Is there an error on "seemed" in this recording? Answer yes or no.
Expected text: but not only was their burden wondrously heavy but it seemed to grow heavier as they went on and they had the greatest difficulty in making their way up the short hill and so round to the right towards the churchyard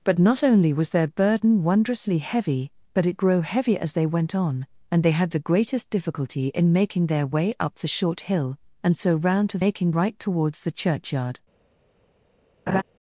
yes